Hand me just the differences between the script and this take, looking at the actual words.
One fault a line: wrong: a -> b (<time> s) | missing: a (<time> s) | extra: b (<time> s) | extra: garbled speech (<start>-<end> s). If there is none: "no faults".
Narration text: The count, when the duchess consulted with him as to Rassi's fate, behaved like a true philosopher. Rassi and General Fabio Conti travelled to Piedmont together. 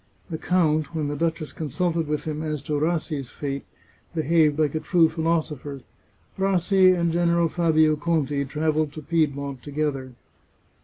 no faults